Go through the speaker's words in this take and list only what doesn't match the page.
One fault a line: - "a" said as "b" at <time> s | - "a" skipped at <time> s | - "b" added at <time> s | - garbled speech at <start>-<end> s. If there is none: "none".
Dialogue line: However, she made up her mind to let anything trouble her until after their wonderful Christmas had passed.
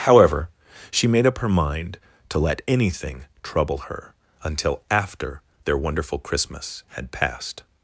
none